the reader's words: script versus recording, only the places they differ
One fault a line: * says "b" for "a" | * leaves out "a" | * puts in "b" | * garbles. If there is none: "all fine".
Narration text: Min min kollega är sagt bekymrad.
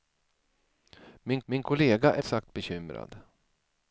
all fine